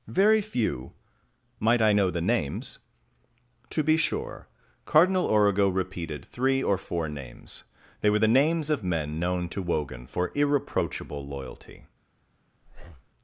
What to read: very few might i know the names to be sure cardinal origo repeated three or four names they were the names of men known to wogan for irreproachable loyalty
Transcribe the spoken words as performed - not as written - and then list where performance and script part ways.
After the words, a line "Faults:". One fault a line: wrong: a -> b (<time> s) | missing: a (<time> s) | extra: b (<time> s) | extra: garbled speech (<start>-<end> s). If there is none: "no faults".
very few might i know the names to be sure cardinal origo repeated three or four names they were the names of men known to wogan for irreproachable loyalty
Faults:
no faults